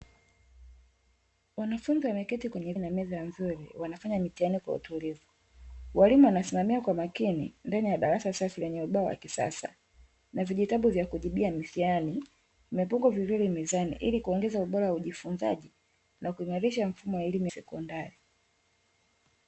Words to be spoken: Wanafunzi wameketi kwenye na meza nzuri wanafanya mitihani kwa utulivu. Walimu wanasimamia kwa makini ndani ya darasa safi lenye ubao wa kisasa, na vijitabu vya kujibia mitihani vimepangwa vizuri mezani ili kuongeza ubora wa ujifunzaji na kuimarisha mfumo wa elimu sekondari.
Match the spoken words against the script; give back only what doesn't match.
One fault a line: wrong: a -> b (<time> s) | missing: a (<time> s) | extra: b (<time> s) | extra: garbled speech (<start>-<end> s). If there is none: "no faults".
no faults